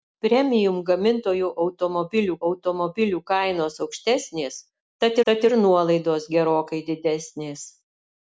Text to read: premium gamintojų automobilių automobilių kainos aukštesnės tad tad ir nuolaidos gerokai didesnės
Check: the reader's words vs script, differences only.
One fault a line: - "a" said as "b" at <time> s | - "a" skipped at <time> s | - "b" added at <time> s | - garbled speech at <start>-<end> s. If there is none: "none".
none